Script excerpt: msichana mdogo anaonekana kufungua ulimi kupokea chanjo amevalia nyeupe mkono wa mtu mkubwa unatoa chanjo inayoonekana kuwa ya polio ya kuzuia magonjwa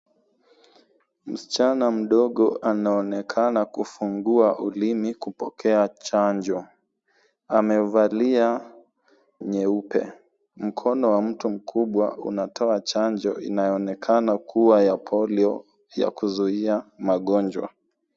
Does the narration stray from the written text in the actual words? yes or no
no